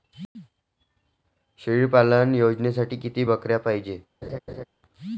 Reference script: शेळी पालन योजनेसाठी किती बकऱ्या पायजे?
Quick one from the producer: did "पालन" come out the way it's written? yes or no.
yes